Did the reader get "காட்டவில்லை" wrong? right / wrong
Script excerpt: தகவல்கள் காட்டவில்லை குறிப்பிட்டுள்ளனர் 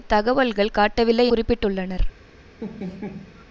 right